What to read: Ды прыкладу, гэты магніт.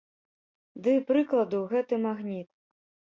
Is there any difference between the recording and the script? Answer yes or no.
no